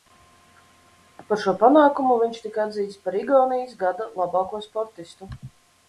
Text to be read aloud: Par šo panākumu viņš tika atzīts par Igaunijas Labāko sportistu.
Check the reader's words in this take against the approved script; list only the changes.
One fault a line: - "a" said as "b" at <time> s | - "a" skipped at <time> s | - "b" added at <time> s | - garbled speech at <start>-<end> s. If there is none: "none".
- "Gada" added at 3.8 s